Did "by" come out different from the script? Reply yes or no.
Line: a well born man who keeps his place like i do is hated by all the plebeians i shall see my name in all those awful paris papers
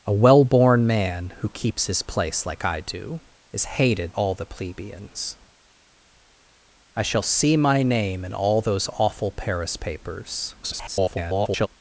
yes